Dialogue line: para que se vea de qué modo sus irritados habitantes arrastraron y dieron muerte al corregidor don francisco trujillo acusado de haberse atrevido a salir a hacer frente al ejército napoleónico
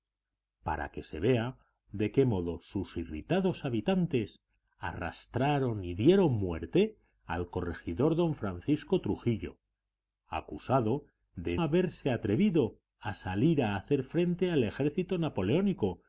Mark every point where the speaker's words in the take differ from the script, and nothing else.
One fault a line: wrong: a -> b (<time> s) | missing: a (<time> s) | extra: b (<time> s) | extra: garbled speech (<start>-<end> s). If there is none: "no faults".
no faults